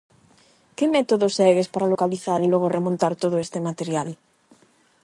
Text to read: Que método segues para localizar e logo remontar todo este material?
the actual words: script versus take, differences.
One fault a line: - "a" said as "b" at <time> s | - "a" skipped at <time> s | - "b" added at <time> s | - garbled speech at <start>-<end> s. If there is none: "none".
none